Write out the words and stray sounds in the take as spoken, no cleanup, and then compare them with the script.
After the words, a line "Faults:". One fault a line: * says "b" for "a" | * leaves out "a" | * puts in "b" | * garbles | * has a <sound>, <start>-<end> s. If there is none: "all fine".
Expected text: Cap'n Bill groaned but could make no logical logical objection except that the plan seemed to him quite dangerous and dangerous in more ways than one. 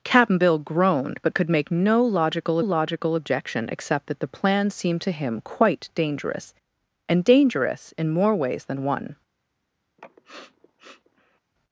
Cap'n Bill groaned but could make no logical logical objection except that the plan seemed to him quite dangerous and dangerous in more ways than one.
Faults:
* has a sniff, 10.0-11.4 s